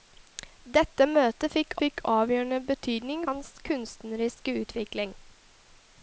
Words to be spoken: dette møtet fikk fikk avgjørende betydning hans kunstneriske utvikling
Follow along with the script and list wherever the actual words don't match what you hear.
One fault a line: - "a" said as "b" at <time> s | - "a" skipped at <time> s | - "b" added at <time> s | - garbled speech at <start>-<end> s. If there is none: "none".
none